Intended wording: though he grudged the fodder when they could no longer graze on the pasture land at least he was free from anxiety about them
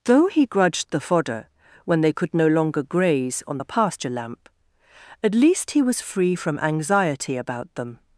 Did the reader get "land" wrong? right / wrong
wrong